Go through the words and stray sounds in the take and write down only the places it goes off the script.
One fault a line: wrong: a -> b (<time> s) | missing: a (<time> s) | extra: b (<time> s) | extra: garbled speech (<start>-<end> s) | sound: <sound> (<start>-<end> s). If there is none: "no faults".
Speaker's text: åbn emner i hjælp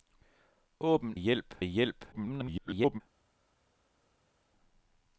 wrong: emner -> hjælp (1.1 s)
extra: garbled speech (2.1-3.0 s)